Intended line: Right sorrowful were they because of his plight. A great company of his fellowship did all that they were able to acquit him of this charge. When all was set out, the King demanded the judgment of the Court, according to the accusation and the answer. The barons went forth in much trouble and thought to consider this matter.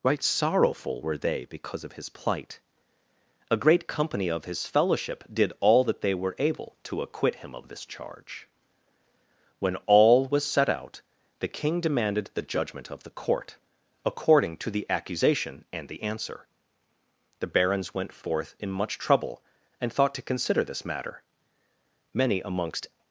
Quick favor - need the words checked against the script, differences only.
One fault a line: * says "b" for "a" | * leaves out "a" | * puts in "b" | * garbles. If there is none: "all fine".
* puts in "Many amongst"